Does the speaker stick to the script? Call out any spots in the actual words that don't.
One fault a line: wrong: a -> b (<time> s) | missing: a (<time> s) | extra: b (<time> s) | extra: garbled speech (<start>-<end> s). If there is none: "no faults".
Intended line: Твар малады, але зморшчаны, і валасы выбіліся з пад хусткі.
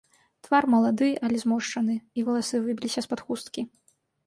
no faults